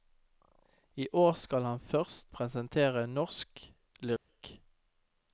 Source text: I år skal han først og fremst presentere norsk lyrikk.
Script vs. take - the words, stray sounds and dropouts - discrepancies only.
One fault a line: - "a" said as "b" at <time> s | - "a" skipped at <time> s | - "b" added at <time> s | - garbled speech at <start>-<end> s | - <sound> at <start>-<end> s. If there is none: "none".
- "og fremst" skipped at 2.3 s
- dropout at 4.2-4.3 s